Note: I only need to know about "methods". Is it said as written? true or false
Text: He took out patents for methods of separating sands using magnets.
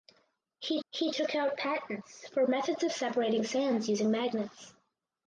true